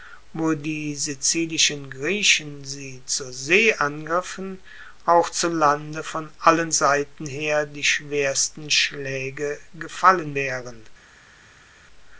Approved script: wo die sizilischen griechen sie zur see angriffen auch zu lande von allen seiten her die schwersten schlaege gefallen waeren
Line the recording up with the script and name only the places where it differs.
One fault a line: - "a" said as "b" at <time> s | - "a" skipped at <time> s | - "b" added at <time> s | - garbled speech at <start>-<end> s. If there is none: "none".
none